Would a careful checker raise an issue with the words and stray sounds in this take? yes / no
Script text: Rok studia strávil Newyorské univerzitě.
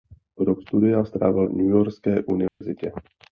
yes